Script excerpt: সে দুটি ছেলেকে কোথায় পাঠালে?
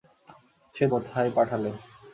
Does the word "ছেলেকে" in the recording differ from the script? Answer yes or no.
yes